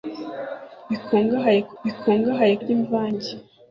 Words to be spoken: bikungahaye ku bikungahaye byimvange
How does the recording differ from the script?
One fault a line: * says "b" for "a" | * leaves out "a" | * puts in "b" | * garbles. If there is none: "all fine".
all fine